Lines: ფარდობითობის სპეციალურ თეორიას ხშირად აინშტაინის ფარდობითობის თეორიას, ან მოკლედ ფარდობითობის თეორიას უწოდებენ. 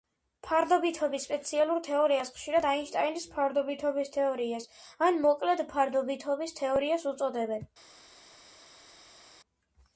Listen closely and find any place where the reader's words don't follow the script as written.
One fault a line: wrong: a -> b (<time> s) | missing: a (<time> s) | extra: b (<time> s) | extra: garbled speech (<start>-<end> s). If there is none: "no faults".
no faults